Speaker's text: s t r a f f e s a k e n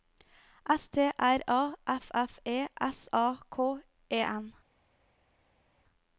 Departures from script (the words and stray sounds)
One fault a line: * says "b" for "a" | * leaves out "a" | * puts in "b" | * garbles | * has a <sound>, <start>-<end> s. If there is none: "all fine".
all fine